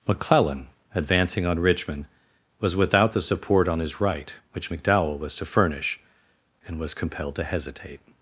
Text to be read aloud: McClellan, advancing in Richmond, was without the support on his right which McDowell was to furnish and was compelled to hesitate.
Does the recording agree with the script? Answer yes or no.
no